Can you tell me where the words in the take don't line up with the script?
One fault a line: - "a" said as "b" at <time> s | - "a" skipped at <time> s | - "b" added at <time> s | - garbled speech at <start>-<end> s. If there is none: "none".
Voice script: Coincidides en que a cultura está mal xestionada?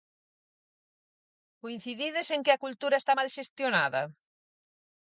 none